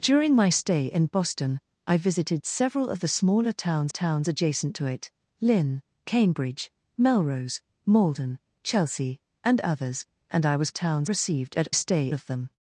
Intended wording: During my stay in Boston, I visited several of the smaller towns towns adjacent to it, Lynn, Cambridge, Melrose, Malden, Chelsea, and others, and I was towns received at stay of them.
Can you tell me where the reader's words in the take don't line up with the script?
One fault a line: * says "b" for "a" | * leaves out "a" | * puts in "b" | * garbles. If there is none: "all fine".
all fine